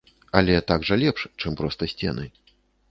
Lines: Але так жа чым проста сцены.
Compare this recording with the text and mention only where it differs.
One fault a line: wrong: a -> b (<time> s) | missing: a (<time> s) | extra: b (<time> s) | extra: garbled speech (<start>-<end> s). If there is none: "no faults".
extra: лепш (1.0 s)